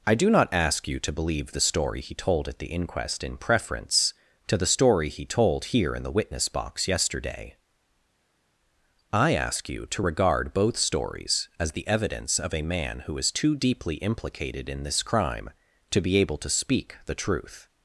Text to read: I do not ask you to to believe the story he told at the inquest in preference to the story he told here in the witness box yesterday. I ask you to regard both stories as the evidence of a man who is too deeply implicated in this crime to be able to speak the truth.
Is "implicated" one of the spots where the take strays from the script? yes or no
no